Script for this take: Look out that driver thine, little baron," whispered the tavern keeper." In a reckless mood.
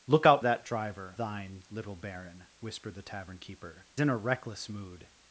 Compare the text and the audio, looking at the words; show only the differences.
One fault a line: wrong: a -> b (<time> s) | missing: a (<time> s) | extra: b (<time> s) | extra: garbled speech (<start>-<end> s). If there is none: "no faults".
no faults